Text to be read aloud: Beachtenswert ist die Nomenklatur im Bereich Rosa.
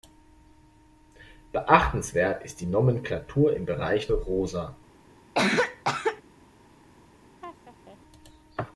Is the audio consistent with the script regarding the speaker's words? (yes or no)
yes